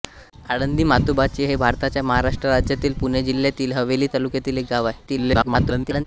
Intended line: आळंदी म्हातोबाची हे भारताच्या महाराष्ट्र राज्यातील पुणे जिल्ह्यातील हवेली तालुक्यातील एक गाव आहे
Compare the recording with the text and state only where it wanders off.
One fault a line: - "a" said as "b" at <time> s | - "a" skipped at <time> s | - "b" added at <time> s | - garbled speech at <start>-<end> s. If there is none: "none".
- garbled speech at 5.1-6.0 s